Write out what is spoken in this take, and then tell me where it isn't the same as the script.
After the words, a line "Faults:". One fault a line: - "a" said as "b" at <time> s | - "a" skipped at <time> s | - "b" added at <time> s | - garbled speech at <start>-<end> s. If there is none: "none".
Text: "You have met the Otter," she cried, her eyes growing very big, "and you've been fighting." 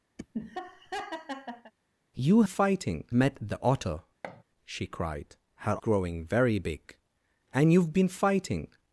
"You fighting met the Otter," she cried, her growing very big, "and you've been fighting."
Faults:
- "have" said as "fighting" at 2.4 s
- "eyes" skipped at 5.8 s